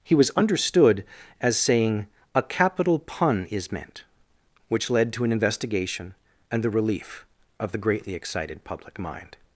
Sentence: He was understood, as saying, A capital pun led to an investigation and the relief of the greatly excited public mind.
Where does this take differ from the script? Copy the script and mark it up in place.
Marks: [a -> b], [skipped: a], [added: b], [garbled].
He was understood, as saying, A capital pun [added: is meant which] led to an investigation and the relief of the greatly excited public mind.